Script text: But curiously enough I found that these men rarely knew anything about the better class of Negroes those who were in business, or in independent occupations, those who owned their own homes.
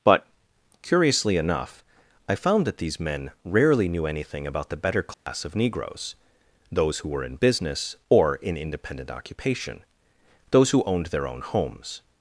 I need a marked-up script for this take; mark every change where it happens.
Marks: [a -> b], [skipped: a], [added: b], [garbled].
But curiously enough I found that these men rarely knew anything about the better class of Negroes those who were in business, or in independent [occupations, -> occupation] those who owned their own homes.